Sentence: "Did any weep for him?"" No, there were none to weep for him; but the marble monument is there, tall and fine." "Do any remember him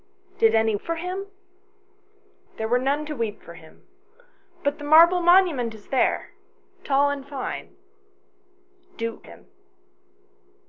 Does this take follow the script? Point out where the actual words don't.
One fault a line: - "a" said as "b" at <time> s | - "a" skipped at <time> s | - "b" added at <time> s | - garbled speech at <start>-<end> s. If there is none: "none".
- "weep" skipped at 0.8 s
- "No" skipped at 1.3 s
- "any remember" skipped at 9.2 s